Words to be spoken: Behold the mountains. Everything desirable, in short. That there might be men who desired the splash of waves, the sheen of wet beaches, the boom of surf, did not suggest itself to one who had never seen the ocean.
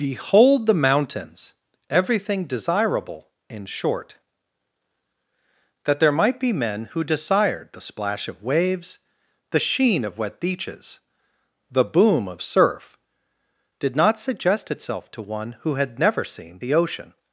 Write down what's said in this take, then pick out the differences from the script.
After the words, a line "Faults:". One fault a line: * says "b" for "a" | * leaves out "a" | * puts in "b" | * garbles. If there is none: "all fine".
Behold the mountains. Everything desirable, in short. That there might be men who desired the splash of waves, the sheen of wet beaches, the boom of surf, did not suggest itself to one who had never seen the ocean.
Faults:
all fine